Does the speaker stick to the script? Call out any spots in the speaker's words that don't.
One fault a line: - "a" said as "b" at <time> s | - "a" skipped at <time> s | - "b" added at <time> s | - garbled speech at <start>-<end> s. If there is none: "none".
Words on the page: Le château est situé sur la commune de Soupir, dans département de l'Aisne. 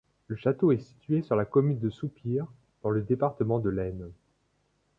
- "le" added at 2.9 s